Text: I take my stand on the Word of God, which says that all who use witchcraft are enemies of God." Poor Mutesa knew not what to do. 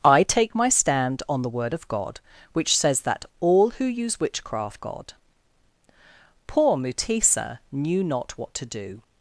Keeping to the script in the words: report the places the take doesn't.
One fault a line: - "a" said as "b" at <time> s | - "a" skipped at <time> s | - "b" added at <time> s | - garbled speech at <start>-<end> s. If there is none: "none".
- "are enemies of" skipped at 4.8 s